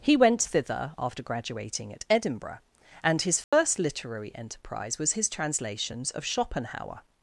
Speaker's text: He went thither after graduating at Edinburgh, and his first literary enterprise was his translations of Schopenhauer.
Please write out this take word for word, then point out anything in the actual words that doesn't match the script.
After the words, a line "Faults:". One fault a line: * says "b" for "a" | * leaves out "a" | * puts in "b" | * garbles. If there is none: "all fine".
He went thither after graduating at Edinburgh, and his first literary enterprise was his translations of Schopenhauer.
Faults:
all fine